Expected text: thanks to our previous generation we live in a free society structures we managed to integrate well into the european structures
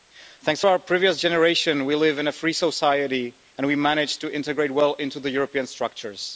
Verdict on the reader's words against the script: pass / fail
fail